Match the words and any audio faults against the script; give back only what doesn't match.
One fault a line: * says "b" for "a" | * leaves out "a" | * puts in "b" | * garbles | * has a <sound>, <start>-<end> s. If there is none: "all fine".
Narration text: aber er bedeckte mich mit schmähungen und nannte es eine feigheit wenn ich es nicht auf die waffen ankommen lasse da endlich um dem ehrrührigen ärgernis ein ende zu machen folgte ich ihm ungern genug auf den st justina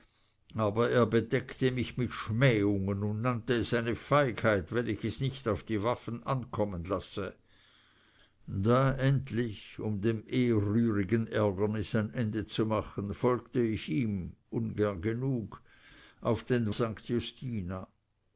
all fine